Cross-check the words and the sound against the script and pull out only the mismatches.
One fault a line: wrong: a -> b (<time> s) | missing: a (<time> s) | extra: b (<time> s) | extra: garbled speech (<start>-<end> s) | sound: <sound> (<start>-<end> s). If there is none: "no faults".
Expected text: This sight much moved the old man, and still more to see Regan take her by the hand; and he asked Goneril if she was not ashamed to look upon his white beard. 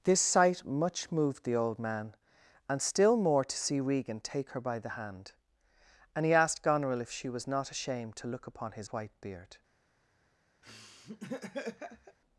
sound: laugh (10.6-12.2 s)